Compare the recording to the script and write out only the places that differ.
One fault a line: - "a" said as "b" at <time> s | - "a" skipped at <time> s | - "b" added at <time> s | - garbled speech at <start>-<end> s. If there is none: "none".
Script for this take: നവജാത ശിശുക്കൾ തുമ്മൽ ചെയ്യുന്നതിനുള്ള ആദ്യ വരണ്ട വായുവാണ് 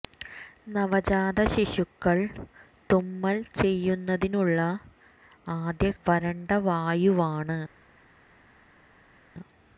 none